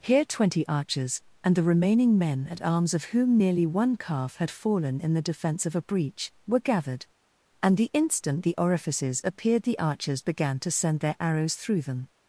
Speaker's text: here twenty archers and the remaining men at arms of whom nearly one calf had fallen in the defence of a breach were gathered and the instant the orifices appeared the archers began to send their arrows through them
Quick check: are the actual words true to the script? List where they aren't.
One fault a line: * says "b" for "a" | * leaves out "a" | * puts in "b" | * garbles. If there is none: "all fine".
all fine